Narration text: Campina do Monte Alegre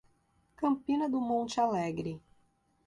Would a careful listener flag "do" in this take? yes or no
no